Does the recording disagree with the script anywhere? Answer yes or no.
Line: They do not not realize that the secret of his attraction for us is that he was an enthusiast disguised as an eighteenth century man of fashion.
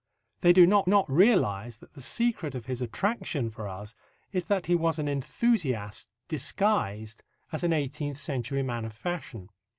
no